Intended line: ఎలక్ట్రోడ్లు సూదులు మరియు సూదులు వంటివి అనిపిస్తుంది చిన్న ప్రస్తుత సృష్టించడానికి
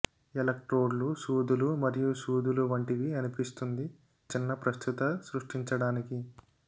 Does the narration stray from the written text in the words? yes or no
no